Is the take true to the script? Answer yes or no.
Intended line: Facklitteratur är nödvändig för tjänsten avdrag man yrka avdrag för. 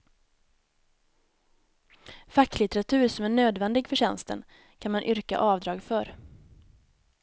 no